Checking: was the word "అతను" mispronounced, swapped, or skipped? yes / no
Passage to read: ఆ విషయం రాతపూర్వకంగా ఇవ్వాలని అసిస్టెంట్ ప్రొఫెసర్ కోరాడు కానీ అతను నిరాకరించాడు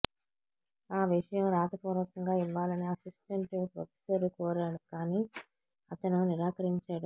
no